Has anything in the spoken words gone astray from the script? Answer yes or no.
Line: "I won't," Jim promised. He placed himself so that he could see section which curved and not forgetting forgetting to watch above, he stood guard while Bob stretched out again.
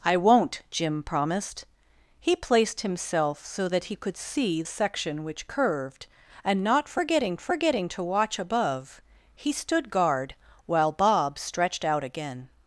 no